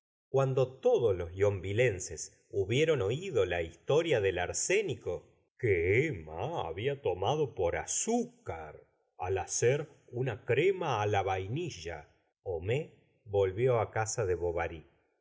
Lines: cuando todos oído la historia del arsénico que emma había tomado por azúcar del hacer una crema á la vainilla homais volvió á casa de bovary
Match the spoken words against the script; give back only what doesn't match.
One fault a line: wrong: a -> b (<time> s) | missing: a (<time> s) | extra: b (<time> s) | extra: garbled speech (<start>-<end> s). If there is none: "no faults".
extra: los yonvilleses hubieron (1.1 s)
wrong: del -> al (9.2 s)